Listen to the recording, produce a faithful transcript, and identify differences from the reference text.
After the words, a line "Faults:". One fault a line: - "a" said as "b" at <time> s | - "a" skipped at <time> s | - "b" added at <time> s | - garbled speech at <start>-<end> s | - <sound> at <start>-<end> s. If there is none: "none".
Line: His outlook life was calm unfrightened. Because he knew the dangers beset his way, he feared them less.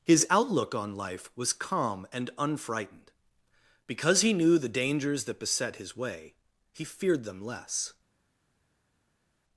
His outlook on life was calm and unfrightened. Because he knew the dangers that beset his way, he feared them less.
Faults:
- "on" added at 0.7 s
- "and" added at 2.1 s
- "that" added at 5.2 s